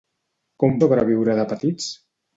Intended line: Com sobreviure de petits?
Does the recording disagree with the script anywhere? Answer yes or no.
no